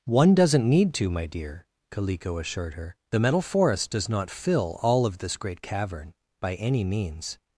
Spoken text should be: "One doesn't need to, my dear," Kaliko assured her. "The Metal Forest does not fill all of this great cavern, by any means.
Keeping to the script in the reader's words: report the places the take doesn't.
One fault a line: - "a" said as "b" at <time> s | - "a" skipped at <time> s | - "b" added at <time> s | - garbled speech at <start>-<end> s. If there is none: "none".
none